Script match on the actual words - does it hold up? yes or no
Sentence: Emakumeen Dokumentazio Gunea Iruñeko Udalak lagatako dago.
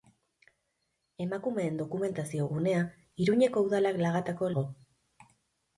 yes